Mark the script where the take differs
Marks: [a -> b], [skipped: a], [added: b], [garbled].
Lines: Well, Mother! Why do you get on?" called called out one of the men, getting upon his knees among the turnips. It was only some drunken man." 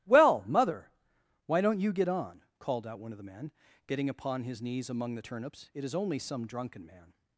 Well, Mother! Why [do -> don't] you get on?" called [skipped: called] out one of the men, getting upon his knees among the turnips. It [was -> is] only some drunken man."